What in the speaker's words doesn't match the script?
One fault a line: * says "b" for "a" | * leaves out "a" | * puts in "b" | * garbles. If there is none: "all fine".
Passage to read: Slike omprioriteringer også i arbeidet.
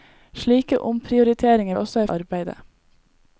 all fine